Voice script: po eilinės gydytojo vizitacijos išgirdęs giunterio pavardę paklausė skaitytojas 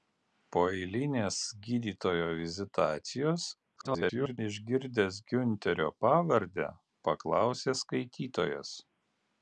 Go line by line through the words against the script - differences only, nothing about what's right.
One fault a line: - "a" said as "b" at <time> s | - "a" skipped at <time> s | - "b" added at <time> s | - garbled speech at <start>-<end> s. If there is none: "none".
- garbled speech at 3.8-4.4 s